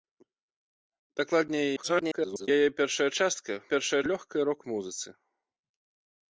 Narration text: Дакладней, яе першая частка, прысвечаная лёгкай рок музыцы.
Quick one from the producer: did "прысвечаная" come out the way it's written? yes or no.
no